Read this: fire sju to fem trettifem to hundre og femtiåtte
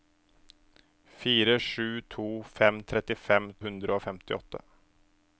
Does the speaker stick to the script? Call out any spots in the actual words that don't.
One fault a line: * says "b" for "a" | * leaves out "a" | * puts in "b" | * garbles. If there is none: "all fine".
* leaves out "to"